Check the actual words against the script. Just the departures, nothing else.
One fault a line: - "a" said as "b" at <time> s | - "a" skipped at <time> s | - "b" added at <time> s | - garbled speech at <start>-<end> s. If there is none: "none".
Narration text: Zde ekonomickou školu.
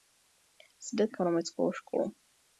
none